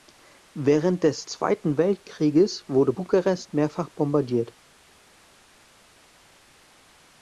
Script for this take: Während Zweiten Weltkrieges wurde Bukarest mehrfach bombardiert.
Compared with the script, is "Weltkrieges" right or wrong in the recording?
right